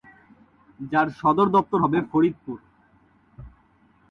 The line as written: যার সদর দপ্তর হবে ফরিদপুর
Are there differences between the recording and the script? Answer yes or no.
no